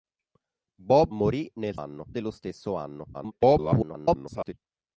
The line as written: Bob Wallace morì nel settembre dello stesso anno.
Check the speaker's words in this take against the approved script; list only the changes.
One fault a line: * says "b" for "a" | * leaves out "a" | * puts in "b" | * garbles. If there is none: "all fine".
* leaves out "Wallace"
* says "anno" for "settembre"
* garbles